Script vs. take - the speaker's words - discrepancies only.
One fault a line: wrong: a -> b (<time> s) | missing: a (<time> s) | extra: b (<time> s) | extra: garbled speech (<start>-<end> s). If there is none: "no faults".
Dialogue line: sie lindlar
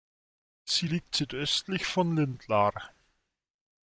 extra: liegt südöstlich von (0.8 s)